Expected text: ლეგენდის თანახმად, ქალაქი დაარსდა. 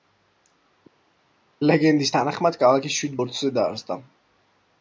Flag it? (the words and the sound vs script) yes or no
yes